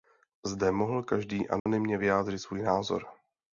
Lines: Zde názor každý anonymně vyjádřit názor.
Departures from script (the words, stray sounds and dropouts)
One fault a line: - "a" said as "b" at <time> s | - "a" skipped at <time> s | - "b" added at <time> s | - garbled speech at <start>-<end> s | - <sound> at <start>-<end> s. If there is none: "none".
- "názor" said as "mohl" at 0.7 s
- dropout at 1.6-1.7 s
- "svůj" added at 2.4 s